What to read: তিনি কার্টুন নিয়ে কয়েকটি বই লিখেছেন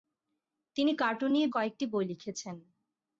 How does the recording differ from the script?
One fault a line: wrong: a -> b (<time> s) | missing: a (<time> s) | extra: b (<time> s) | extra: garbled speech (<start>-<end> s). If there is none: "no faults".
no faults